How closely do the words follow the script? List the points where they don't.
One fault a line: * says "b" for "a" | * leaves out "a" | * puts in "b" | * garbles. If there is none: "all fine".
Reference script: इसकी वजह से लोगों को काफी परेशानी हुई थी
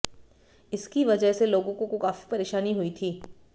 * puts in "को"